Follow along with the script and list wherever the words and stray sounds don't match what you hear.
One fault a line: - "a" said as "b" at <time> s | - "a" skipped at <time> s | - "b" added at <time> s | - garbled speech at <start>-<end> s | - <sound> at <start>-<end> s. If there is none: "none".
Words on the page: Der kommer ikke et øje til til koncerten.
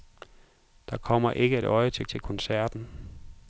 none